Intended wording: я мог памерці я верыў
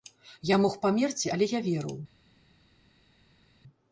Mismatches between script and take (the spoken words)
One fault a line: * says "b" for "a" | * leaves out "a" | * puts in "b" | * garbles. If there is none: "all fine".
* puts in "але"